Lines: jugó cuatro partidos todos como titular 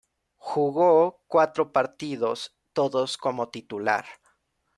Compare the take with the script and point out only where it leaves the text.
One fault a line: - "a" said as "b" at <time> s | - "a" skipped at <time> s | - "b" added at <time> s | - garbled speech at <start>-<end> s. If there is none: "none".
none